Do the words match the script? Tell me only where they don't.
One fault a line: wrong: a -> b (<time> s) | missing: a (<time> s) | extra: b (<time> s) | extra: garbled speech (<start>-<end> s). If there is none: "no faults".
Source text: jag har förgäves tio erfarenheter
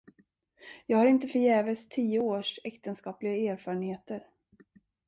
extra: inte (1.1 s)
extra: års äktenskapliga (2.2 s)